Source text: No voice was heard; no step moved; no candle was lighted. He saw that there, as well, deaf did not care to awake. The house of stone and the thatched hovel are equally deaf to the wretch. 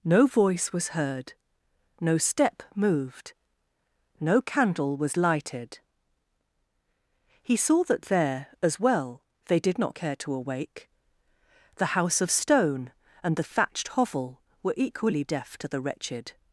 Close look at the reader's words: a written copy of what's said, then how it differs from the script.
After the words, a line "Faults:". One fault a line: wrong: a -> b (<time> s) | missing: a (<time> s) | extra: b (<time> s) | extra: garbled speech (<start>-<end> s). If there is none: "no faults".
No voice was heard; no step moved; no candle was lighted. He saw that there, as well, they did not care to awake. The house of stone and the thatched hovel were equally deaf to the wretched.
Faults:
wrong: deaf -> they (9.4 s)
wrong: are -> were (14.6 s)
wrong: wretch -> wretched (15.8 s)